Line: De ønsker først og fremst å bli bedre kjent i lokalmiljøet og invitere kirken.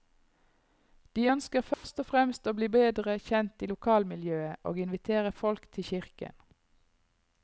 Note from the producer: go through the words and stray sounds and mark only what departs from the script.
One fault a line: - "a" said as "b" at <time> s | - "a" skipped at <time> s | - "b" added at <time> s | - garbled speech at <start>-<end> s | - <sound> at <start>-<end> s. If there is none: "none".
- dropout at 1.7-1.8 s
- "folk til" added at 5.4 s